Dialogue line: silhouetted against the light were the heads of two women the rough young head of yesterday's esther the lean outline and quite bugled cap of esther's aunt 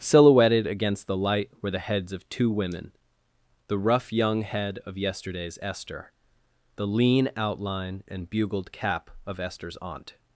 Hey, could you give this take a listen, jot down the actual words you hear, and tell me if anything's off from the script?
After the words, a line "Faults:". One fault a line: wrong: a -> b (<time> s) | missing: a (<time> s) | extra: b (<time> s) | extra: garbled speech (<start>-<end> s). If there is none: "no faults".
silhouetted against the light were the heads of two women the rough young head of yesterday's esther the lean outline and bugled cap of esther's aunt
Faults:
missing: quite (8.3 s)